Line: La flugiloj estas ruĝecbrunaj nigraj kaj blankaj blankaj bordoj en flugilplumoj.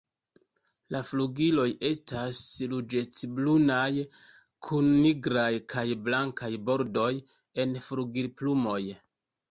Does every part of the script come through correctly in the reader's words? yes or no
no